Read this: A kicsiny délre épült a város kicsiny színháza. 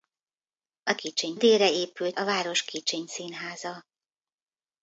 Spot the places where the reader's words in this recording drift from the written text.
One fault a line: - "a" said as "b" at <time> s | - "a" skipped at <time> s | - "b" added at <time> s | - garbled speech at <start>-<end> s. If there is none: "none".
none